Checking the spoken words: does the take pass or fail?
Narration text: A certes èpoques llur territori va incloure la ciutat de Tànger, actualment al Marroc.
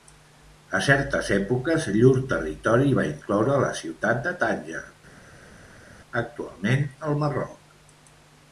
pass